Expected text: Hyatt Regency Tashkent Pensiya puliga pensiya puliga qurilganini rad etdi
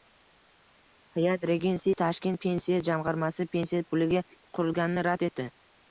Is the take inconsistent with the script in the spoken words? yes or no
yes